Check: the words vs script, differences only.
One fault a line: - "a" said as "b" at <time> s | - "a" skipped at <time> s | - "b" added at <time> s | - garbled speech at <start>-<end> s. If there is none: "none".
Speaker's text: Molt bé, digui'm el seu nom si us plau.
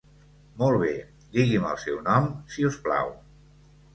none